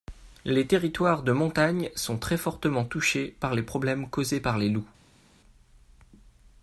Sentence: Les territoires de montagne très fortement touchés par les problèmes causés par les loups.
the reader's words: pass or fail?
fail